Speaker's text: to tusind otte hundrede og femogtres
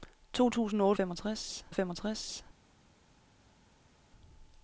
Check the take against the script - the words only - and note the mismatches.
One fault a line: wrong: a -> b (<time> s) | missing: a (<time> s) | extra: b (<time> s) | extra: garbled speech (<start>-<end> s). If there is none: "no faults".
wrong: hundrede -> femogtres (0.9 s)